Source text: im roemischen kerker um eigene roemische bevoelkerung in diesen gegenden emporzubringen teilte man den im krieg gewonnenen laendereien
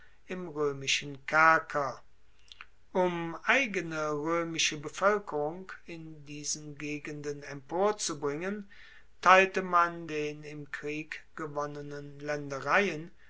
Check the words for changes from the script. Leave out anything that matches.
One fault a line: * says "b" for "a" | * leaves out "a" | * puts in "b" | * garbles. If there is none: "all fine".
all fine